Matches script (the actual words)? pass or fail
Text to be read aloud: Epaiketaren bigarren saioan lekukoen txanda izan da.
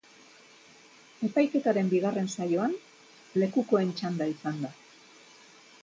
pass